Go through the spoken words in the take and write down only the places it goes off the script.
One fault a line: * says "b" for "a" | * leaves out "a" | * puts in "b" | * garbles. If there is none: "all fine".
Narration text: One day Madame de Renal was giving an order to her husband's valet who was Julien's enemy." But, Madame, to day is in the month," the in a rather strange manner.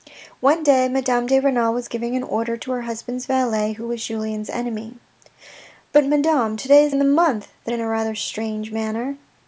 all fine